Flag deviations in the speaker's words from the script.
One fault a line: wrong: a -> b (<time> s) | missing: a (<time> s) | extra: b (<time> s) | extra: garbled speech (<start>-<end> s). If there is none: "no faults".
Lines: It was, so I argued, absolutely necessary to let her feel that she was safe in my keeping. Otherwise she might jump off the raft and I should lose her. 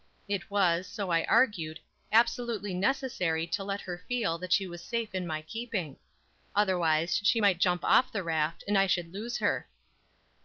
no faults